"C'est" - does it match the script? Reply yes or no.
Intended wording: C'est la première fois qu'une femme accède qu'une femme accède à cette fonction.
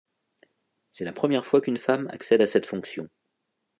yes